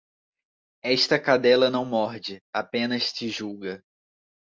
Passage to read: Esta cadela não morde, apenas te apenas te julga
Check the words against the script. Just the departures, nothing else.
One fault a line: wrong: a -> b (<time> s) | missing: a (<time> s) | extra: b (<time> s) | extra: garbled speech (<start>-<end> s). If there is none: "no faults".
missing: apenas te (3.3 s)